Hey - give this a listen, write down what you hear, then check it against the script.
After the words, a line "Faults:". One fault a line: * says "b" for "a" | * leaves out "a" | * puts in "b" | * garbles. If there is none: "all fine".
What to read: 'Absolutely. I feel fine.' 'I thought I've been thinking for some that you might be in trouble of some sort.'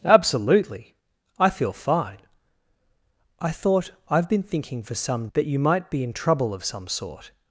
'Absolutely. I feel fine.' 'I thought I've been thinking for some that you might be in trouble of some sort.'
Faults:
all fine